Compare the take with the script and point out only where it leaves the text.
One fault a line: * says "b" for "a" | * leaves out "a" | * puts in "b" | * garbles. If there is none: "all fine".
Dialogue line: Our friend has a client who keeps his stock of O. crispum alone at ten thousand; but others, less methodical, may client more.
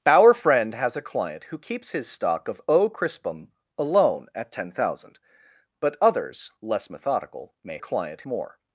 all fine